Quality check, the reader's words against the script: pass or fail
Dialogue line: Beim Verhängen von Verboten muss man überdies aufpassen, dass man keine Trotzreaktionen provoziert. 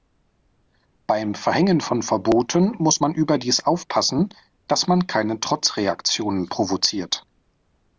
pass